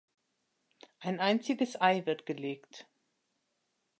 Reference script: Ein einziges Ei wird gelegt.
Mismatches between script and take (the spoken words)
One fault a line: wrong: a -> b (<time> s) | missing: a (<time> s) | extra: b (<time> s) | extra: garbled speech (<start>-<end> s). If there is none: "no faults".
no faults